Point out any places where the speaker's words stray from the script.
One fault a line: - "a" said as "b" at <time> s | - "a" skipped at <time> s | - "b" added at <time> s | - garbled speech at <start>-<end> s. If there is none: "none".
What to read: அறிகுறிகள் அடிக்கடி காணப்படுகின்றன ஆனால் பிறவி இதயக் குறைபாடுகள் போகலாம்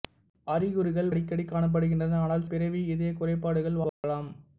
none